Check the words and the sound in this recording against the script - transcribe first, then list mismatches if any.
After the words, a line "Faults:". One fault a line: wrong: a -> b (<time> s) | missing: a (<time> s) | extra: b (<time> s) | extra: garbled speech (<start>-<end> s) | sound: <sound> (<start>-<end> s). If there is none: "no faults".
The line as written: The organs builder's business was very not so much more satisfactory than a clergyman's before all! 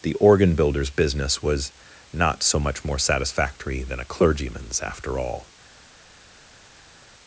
The organ builder's business was not so much more satisfactory than a clergyman's after all!
Faults:
wrong: organs -> organ (0.1 s)
missing: very (1.7 s)
wrong: before -> after (4.8 s)